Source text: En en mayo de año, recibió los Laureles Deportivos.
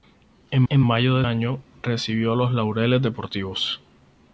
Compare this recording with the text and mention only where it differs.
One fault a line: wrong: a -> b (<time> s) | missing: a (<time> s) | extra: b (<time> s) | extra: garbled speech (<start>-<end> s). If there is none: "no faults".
no faults